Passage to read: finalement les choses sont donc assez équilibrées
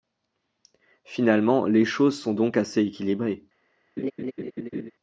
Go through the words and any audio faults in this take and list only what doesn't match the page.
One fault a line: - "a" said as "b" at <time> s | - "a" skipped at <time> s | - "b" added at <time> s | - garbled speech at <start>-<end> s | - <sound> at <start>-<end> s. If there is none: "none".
- laugh at 4.0-4.9 s